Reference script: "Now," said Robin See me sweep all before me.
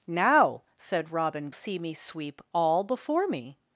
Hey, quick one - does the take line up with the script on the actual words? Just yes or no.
yes